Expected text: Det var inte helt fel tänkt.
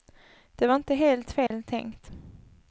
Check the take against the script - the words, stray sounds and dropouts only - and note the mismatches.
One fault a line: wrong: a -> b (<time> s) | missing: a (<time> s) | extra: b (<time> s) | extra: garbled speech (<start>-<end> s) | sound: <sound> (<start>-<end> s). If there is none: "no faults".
sound: dropout (1.5-1.5 s)